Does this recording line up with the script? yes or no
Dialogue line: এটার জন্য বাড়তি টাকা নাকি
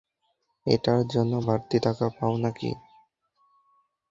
no